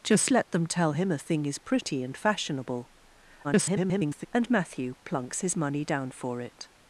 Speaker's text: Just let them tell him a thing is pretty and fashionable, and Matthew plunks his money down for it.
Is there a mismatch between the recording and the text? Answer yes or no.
yes